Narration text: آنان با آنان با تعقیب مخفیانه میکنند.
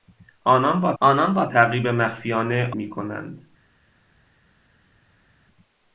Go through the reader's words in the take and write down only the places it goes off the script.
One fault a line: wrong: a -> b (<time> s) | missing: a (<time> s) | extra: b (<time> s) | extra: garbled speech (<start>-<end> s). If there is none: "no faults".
no faults